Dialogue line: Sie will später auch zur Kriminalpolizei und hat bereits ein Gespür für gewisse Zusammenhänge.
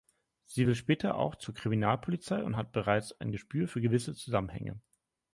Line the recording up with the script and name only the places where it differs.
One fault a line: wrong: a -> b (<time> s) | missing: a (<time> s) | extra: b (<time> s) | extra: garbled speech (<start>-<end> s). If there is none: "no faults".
no faults